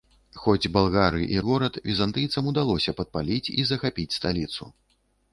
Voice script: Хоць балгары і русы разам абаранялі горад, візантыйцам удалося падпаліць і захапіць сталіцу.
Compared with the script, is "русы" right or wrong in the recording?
wrong